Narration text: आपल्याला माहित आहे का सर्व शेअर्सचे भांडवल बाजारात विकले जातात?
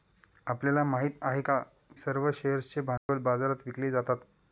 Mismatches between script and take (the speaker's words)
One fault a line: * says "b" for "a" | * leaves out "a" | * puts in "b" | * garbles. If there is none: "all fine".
all fine